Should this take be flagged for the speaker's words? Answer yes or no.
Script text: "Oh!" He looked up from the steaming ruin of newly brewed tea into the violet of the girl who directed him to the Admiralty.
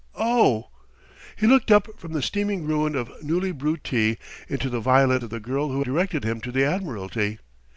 no